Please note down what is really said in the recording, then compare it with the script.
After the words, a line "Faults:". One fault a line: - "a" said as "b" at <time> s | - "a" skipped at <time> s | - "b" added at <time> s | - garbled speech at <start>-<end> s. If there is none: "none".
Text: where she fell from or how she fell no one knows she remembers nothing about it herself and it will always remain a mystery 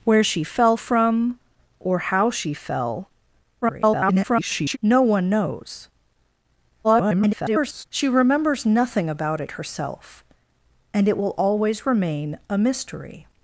where she fell from or how she fell [garbled] no one knows [garbled] she remembers nothing about it herself and it will always remain a mystery
Faults:
- garbled speech at 3.6-4.8 s
- garbled speech at 6.8-7.9 s